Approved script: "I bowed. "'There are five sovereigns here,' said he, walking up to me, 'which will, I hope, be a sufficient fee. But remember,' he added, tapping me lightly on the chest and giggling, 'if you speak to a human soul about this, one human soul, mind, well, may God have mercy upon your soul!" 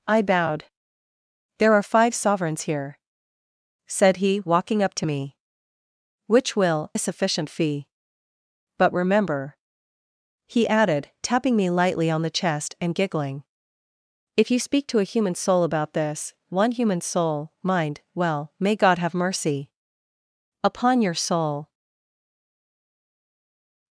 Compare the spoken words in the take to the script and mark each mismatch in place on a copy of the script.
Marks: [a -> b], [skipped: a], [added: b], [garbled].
"I bowed. "'There are five sovereigns here,' said he, walking up to me, 'which will, [skipped: I hope, be] a sufficient fee. But remember,' he added, tapping me lightly on the chest and giggling, 'if you speak to a human soul about this, one human soul, mind, well, may God have mercy upon your soul!"